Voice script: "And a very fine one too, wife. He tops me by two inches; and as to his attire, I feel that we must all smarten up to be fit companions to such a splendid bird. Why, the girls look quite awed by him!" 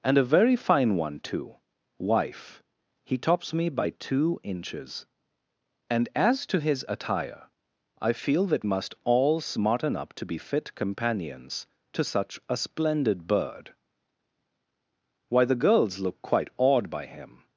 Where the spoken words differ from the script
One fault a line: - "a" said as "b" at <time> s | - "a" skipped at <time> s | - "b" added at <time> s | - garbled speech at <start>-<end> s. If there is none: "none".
- "we" skipped at 8.7 s